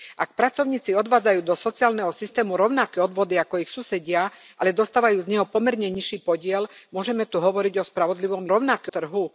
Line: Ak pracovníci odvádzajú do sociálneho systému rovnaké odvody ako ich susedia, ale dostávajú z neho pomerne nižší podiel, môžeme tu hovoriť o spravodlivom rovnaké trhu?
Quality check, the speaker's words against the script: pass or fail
pass